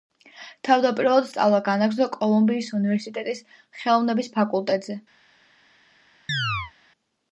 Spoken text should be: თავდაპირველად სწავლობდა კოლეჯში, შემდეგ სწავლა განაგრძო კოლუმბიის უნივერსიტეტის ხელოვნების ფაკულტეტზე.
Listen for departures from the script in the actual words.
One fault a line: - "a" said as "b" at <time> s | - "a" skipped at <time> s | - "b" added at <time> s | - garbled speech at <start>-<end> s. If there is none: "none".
- "სწავლობდა კოლეჯში შემდეგ" skipped at 1.3 s